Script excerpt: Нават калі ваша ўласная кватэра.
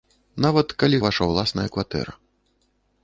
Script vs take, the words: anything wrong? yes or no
no